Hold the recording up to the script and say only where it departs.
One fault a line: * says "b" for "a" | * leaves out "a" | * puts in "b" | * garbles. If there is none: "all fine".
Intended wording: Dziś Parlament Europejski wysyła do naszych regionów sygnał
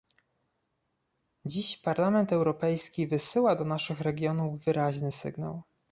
* puts in "wyraźny"